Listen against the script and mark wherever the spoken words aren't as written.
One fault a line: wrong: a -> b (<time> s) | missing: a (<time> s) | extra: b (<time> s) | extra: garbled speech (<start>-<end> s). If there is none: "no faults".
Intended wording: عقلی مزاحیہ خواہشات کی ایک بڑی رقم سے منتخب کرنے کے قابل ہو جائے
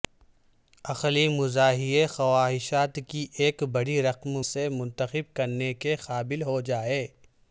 no faults